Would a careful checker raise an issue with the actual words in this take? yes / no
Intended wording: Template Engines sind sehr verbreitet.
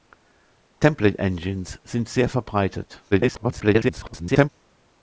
yes